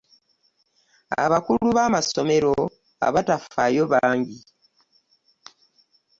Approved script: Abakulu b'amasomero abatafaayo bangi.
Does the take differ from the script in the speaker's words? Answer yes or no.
no